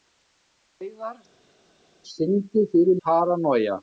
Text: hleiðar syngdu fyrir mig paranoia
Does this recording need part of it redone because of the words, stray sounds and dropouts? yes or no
yes